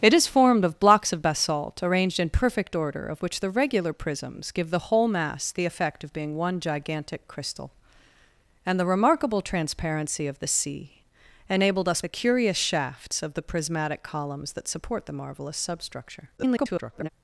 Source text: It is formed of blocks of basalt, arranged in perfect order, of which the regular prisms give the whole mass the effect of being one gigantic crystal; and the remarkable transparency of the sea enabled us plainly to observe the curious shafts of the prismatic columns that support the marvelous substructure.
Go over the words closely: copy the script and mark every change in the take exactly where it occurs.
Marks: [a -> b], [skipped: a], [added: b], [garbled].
It is formed of blocks of basalt, arranged in perfect order, of which the regular prisms give the whole mass the effect of being one gigantic crystal; and the remarkable transparency of the sea enabled us [skipped: plainly to observe] the curious shafts of the prismatic columns that support the marvelous substructure. [garbled]